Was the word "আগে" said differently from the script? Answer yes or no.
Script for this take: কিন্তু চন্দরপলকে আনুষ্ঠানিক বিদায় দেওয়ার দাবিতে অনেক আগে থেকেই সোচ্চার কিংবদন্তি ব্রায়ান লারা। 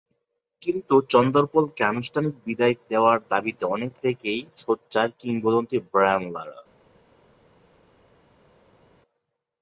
yes